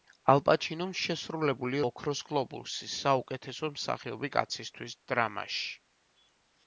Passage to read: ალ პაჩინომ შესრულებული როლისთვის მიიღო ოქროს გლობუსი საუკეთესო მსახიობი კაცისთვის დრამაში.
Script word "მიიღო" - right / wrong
wrong